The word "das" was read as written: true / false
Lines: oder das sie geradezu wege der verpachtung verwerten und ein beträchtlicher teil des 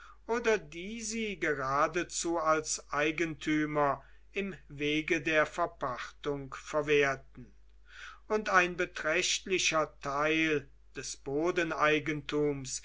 false